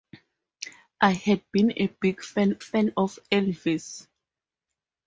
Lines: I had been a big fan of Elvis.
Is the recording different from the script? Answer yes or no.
yes